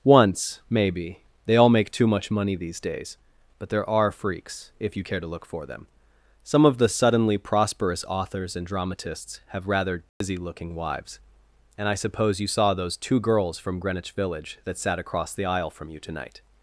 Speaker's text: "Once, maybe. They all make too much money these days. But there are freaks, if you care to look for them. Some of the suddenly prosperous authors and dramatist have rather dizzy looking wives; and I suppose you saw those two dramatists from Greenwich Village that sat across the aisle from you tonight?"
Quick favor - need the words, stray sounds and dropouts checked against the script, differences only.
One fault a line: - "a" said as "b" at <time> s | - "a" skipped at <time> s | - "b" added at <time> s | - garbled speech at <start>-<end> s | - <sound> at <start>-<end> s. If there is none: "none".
- "dramatist" said as "dramatists" at 8.7 s
- dropout at 10.1-10.2 s
- "dramatists" said as "girls" at 13.2 s